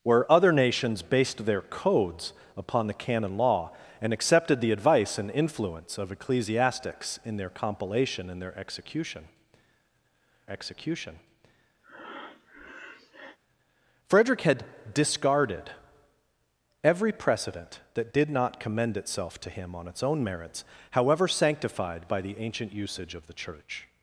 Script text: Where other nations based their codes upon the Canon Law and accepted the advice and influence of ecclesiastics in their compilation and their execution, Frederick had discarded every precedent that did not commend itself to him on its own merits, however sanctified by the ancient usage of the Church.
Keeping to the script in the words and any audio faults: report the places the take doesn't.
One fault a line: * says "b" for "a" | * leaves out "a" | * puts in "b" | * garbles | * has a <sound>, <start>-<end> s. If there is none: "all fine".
* puts in "execution"
* has a breath, 11.8-13.4 s